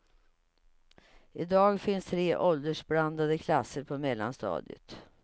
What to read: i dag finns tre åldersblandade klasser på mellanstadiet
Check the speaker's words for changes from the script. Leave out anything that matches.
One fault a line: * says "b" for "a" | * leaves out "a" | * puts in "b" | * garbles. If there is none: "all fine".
all fine